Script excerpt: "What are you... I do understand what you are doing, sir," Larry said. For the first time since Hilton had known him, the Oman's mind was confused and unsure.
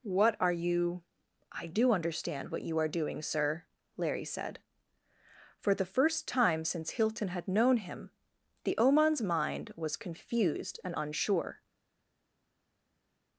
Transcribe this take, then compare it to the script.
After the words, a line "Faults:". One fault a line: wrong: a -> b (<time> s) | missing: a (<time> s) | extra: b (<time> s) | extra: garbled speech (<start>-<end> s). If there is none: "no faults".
"What are you... I do understand what you are doing, sir," Larry said. For the first time since Hilton had known him, the Oman's mind was confused and unsure.
Faults:
no faults